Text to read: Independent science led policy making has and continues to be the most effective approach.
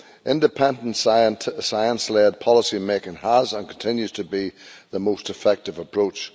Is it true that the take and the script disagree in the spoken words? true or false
false